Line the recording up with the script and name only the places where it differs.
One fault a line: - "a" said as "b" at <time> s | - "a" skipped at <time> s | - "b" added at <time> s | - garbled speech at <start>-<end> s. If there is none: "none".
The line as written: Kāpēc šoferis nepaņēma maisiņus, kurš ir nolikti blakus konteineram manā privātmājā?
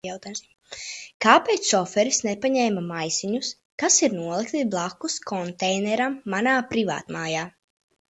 - "kurš" said as "kas" at 3.8 s